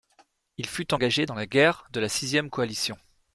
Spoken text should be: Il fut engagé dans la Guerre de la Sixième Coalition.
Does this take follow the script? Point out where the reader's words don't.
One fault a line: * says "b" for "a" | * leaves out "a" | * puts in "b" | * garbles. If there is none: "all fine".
all fine